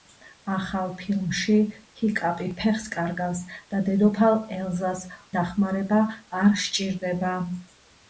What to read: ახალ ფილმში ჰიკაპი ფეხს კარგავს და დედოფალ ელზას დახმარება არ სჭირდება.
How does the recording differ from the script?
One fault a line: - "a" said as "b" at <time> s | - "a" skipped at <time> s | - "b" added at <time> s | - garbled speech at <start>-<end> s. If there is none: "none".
none